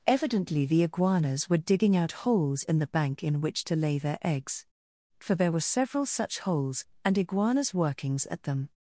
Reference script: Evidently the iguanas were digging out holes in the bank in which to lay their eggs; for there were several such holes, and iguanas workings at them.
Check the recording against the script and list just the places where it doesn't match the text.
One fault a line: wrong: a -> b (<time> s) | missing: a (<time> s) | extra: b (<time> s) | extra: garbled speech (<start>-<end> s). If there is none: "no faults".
no faults